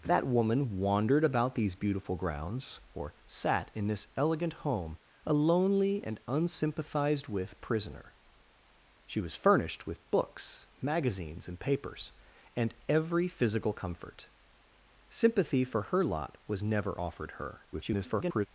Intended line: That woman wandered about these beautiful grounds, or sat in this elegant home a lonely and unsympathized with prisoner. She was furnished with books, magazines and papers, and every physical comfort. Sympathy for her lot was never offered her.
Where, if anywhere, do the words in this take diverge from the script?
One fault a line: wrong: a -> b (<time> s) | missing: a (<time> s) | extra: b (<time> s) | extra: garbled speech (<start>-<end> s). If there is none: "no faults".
extra: garbled speech (17.7-18.5 s)